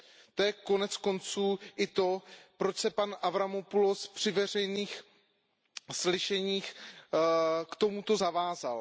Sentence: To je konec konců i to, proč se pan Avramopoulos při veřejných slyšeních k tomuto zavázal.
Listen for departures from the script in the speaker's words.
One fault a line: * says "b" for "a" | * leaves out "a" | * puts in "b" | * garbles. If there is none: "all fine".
all fine